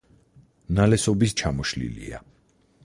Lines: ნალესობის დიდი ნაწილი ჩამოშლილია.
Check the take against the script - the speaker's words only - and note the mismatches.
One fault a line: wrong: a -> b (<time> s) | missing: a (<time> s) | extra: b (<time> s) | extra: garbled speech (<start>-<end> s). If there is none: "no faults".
missing: დიდი ნაწილი (1.4 s)